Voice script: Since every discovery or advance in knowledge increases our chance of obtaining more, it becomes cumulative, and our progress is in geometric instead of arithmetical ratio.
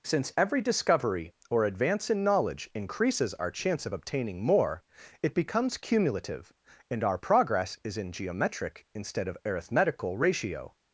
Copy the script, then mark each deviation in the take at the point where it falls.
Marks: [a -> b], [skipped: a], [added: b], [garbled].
Since every discovery or advance in knowledge increases our chance of obtaining more, it becomes cumulative, and our progress is in geometric instead of arithmetical ratio.